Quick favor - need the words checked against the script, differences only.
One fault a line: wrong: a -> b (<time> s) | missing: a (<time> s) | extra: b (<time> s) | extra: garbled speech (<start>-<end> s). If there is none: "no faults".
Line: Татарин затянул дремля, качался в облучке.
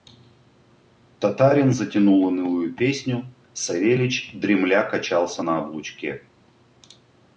extra: унылую песню Савельич (2.2 s)
wrong: в -> на (5.4 s)